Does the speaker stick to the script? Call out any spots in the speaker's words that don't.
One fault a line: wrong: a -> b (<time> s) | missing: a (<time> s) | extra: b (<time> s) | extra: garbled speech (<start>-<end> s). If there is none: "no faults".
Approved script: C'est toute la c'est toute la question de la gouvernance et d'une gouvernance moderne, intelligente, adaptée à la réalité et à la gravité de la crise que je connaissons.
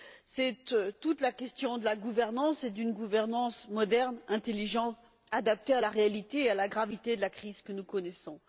missing: c'est toute la (1.3 s)
wrong: je -> nous (7.7 s)